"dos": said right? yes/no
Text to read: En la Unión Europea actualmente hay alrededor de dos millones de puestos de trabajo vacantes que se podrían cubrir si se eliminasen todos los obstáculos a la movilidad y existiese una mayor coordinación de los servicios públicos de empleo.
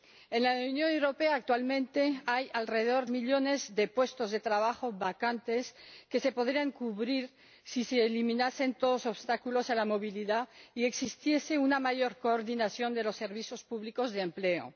no